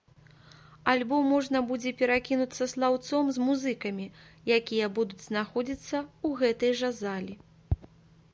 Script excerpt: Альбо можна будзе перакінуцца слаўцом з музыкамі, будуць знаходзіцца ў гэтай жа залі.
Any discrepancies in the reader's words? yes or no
yes